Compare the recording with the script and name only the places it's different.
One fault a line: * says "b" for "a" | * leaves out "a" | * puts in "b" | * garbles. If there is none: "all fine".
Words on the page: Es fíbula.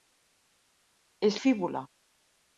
all fine